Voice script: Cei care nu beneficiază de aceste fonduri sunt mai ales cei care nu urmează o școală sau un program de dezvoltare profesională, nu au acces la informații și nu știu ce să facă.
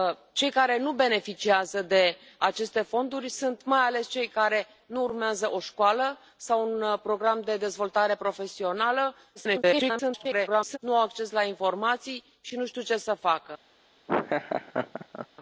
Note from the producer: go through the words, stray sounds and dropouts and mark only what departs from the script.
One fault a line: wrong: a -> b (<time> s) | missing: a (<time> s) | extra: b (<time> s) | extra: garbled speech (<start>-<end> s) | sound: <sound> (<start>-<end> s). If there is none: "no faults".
extra: garbled speech (9.4-10.8 s)
sound: laugh (14.1-15.3 s)